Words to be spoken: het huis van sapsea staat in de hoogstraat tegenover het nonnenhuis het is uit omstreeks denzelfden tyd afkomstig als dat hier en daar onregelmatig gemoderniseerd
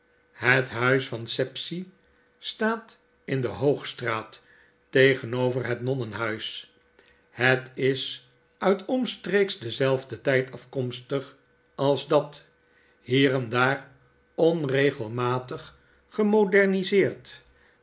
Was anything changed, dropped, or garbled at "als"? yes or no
no